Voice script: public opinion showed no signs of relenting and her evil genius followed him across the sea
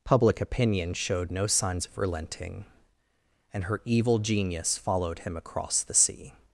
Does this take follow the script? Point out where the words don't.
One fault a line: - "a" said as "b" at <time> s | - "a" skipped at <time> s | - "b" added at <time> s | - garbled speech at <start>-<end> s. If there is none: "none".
none